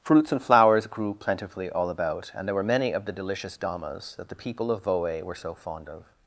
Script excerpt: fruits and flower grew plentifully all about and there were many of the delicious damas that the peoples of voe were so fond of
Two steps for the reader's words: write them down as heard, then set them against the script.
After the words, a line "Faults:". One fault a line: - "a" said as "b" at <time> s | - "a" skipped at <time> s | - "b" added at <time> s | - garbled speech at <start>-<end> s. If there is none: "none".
fruits and flowers grew plentifully all about and there were many of the delicious damas that the people of voe were so fond of
Faults:
- "flower" said as "flowers" at 0.4 s
- "peoples" said as "people" at 4.3 s